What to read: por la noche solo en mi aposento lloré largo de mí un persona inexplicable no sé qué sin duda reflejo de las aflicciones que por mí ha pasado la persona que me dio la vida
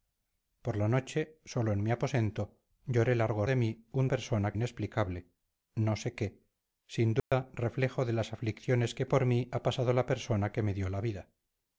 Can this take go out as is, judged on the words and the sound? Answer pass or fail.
fail